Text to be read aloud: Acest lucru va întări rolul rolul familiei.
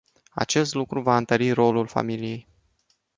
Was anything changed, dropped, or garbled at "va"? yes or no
no